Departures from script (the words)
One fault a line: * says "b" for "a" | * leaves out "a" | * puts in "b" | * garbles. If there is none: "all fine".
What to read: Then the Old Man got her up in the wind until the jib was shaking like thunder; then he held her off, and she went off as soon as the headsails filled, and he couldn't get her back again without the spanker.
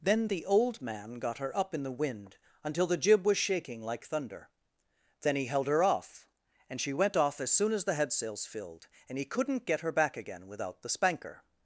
all fine